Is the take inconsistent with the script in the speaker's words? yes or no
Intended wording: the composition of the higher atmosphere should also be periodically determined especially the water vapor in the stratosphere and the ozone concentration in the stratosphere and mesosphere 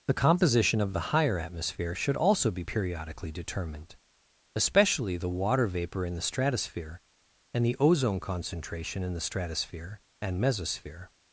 no